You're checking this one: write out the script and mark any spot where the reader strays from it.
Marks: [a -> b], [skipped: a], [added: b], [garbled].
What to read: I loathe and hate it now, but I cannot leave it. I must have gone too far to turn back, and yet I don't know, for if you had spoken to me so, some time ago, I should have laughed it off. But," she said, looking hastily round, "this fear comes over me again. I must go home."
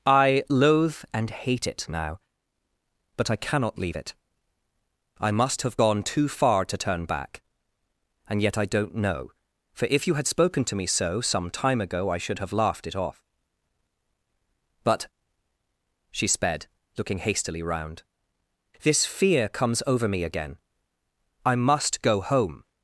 I loathe and hate it now, but I cannot leave it. I must have gone too far to turn back, and yet I don't know, for if you had spoken to me so, some time ago, I should have laughed it off. But," she [said, -> sped] looking hastily round, "this fear comes over me again. I must go home."